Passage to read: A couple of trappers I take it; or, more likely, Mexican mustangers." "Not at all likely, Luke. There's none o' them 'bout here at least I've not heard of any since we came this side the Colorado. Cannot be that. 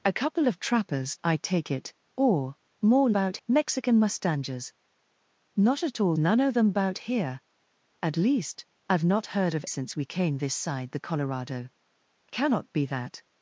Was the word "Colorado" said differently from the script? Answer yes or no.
no